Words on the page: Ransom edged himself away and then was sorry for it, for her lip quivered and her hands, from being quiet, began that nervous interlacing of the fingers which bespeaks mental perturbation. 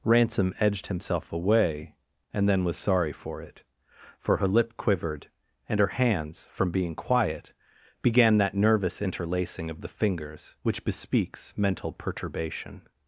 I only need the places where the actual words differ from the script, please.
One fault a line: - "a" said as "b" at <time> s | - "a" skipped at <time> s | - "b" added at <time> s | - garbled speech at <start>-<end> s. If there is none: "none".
none